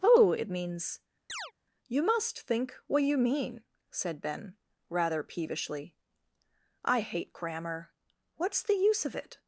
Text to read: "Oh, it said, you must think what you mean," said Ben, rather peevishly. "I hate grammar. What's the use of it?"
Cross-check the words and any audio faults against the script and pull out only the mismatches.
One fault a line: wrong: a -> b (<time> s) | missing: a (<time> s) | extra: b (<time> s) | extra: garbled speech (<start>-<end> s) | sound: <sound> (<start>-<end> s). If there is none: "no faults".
wrong: said -> means (0.5 s)
sound: chirp (1.3-1.5 s)